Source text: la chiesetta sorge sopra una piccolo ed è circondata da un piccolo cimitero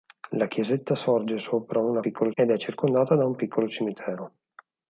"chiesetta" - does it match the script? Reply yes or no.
yes